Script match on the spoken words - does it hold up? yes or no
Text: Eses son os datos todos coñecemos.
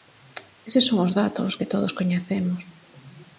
no